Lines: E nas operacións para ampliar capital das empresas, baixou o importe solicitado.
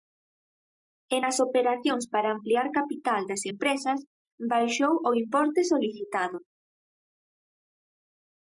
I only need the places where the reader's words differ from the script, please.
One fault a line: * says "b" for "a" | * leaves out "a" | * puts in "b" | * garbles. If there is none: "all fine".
all fine